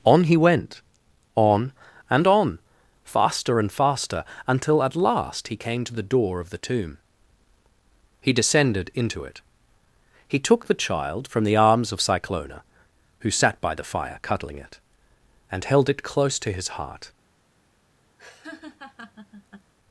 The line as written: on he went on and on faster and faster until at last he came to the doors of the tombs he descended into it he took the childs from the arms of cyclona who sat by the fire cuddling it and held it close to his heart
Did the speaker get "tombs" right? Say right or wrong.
wrong